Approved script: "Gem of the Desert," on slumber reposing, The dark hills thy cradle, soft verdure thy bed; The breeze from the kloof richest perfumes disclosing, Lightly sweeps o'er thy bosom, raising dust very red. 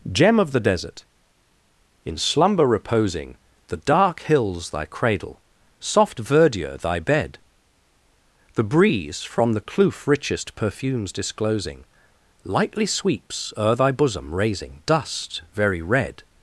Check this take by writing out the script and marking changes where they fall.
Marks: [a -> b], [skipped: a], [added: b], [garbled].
"Gem of the Desert," [on -> in] slumber reposing, The dark hills thy cradle, soft verdure thy bed; The breeze from the kloof richest perfumes disclosing, Lightly sweeps o'er thy bosom, raising dust very red.